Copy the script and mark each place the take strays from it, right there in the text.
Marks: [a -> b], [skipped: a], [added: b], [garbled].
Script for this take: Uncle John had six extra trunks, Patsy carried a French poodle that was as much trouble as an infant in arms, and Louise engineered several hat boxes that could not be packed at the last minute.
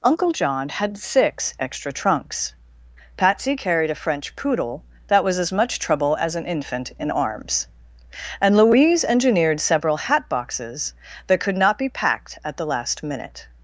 Uncle John had six extra trunks, Patsy carried a French poodle that was as much trouble as an infant in arms, and Louise engineered several hat boxes that could not be packed at the last minute.